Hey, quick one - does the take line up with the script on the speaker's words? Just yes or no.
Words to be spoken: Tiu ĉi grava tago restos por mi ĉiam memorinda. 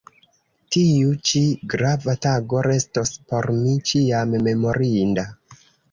yes